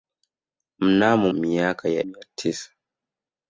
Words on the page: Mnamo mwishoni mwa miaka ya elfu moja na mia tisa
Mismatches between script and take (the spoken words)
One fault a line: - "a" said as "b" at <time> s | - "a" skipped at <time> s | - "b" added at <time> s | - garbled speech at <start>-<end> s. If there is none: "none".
- "mwishoni mwa" skipped at 1.3 s
- "elfu moja na" skipped at 2.0 s